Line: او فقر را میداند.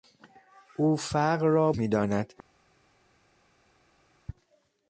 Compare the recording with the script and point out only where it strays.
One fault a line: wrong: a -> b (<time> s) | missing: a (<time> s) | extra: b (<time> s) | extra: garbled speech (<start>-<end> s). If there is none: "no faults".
no faults